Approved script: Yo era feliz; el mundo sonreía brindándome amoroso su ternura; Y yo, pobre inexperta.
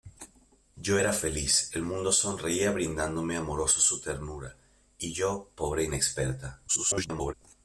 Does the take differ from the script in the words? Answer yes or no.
yes